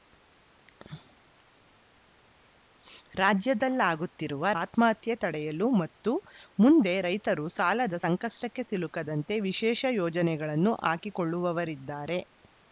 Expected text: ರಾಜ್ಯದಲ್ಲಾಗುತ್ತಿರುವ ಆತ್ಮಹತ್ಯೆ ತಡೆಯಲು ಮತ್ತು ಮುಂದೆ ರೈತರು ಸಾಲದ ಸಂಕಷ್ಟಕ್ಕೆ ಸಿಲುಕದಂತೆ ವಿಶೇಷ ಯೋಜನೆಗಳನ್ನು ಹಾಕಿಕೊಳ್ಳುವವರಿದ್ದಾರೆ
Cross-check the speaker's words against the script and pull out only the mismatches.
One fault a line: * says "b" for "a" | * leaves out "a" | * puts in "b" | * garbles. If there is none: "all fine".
all fine